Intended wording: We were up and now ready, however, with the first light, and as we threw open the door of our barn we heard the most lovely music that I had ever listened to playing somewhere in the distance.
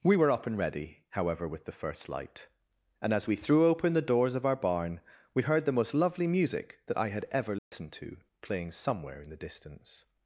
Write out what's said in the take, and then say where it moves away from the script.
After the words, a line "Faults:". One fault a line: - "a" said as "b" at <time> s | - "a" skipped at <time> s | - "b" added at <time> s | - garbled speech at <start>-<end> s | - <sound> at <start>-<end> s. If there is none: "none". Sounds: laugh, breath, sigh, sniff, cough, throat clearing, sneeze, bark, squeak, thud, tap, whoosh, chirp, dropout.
We were up and ready, however, with the first light, and as we threw open the doors of our barn we heard the most lovely music that I had ever listened to playing somewhere in the distance.
Faults:
- "now" skipped at 0.6 s
- "door" said as "doors" at 4.0 s
- dropout at 7.6-7.7 s